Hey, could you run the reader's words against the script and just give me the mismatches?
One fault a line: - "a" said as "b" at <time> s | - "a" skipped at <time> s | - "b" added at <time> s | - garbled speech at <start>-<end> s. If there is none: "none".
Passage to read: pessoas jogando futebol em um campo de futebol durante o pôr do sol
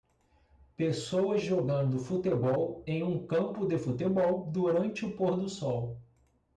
none